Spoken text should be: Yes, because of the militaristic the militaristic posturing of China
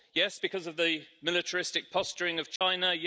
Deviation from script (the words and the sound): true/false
true